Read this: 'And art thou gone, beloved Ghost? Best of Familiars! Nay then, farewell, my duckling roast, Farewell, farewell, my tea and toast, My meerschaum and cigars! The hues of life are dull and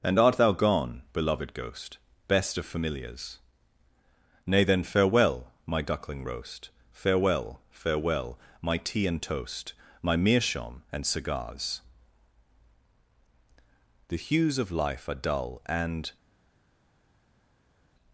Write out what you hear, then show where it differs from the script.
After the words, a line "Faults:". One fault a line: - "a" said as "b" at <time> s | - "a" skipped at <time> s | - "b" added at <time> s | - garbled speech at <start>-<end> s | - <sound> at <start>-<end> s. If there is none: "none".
'And art thou gone, beloved Ghost? Best of Familiars! Nay then, farewell, my duckling roast, Farewell, farewell, my tea and toast, My meerschaum and cigars! The hues of life are dull and
Faults:
none